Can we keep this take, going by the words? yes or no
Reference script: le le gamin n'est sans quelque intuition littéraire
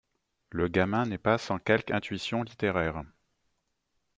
no